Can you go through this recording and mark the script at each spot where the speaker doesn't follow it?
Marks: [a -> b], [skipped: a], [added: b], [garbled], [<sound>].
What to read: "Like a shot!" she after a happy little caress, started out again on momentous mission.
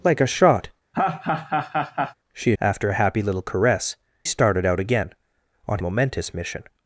"Like a shot!" [laugh] she after a happy little caress, started out again on momentous mission.